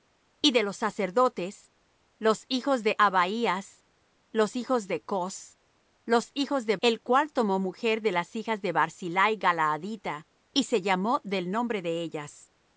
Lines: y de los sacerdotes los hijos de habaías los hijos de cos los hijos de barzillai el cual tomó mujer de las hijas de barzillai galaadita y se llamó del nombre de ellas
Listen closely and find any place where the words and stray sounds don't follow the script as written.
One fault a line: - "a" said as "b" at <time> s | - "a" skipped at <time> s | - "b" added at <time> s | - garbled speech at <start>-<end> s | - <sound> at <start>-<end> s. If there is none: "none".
- "barzillai" skipped at 6.8 s